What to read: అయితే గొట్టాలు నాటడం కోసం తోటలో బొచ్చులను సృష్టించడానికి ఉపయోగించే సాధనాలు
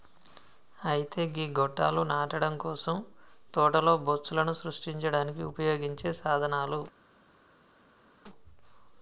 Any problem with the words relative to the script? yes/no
yes